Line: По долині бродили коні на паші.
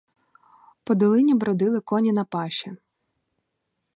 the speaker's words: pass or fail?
pass